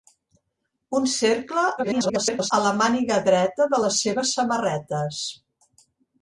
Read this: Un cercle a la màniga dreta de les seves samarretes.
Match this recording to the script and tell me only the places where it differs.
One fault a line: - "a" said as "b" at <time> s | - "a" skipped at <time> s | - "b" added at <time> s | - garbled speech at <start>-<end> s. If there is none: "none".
- garbled speech at 1.8-2.5 s